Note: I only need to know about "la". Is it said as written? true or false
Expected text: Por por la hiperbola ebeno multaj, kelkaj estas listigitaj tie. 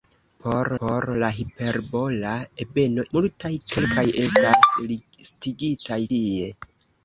true